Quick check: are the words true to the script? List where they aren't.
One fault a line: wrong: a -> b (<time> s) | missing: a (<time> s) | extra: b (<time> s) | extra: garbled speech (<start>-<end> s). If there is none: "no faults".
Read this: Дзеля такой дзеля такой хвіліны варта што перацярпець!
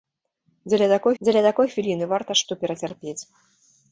no faults